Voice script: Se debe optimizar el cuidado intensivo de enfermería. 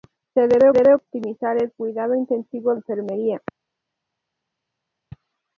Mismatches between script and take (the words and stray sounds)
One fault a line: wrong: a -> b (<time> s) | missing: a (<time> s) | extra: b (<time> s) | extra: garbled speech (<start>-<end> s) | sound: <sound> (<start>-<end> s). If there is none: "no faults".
extra: debe (0.7 s)
missing: de (2.8 s)